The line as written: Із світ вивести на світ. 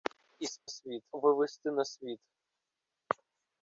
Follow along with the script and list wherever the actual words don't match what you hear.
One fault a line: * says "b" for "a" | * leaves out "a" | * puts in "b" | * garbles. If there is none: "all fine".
all fine